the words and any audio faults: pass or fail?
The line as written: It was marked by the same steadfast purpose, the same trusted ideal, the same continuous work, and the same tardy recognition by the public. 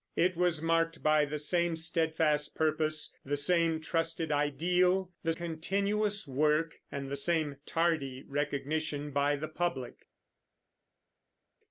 fail